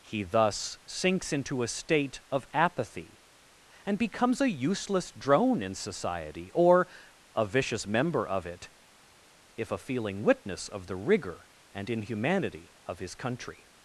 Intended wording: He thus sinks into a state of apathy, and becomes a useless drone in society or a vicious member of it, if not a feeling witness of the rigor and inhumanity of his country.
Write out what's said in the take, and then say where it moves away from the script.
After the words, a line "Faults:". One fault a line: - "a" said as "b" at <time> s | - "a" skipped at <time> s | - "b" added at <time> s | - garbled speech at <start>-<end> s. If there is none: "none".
He thus sinks into a state of apathy, and becomes a useless drone in society or a vicious member of it, if a feeling witness of the rigor and inhumanity of his country.
Faults:
- "not" skipped at 9.7 s